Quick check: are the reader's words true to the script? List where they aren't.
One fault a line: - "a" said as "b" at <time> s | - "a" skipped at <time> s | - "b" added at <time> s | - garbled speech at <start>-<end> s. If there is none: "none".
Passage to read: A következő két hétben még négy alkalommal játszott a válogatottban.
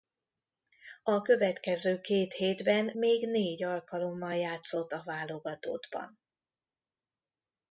none